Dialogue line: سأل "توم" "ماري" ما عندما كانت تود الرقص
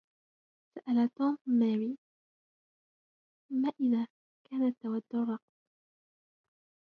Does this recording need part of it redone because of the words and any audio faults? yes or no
yes